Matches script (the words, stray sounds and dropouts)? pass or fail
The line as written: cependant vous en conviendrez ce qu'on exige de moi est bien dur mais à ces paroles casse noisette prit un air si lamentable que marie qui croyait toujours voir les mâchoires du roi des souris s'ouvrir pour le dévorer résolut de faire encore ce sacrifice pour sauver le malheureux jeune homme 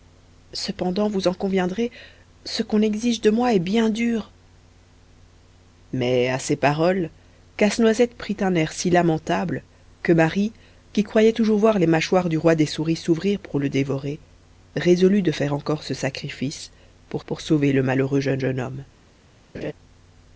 fail